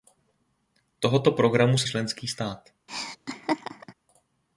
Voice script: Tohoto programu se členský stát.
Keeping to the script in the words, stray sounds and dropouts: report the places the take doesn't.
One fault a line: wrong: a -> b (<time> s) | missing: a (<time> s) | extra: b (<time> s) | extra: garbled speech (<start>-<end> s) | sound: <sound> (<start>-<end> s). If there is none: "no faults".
sound: laugh (2.9-3.9 s)